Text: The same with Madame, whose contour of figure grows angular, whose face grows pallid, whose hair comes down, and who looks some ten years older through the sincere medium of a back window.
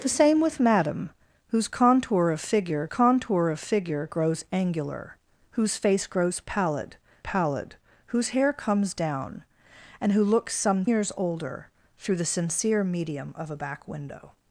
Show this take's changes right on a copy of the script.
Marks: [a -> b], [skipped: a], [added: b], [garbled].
The same with Madame, whose contour of figure [added: contour of figure] grows angular, whose face grows pallid, [added: pallid] whose hair comes down, and who looks some [skipped: ten] years older through the sincere medium of a back window.